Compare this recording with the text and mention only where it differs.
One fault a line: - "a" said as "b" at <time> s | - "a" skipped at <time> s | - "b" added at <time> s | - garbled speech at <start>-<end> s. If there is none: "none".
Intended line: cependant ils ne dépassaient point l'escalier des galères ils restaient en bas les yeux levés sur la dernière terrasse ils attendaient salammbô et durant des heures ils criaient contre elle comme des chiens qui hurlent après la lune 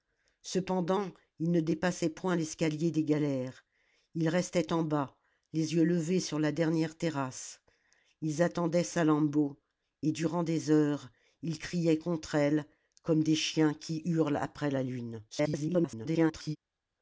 - garbled speech at 15.3-16.6 s